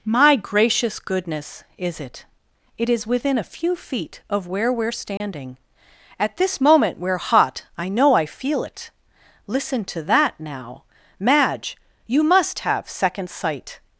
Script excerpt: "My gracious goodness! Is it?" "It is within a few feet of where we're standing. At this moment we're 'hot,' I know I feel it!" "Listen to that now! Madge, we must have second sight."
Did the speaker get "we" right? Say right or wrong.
wrong